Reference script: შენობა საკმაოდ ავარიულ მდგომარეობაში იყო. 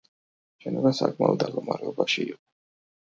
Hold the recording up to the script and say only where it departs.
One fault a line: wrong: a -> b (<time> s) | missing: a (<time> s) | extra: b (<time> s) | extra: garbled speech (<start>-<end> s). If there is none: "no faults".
missing: ავარიულ (1.4 s)